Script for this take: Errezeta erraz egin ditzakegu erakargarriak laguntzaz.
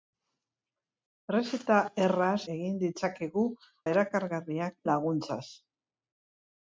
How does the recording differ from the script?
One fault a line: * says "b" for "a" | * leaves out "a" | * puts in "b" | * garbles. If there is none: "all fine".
all fine